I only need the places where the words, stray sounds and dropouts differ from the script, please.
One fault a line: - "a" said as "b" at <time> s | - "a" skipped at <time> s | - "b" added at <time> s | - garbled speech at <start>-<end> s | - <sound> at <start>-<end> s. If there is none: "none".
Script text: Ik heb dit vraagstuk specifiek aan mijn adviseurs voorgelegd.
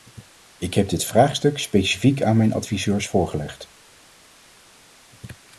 none